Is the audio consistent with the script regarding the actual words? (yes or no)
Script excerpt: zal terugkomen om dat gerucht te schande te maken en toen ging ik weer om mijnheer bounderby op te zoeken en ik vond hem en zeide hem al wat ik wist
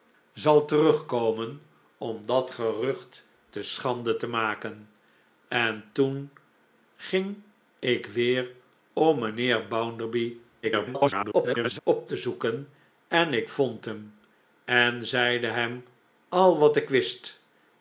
no